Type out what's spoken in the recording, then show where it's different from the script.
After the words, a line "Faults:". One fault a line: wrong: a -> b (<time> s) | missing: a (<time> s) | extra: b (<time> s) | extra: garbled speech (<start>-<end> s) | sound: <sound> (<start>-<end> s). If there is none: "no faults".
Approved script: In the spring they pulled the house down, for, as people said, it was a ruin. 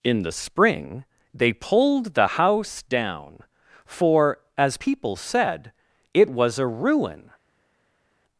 In the spring they pulled the house down, for, as people said, it was a ruin.
Faults:
no faults